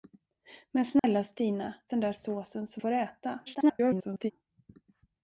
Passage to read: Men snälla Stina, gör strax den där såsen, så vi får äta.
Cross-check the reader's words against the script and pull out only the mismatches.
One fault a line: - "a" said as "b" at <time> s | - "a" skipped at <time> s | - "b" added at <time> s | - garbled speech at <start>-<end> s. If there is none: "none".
- "gör strax" skipped at 1.8 s
- "vi" skipped at 2.8 s
- garbled speech at 3.5-4.3 s